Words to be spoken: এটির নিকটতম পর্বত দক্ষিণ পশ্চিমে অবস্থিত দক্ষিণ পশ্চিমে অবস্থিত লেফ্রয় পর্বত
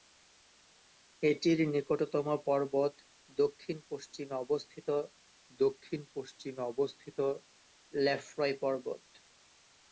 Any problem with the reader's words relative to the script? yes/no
no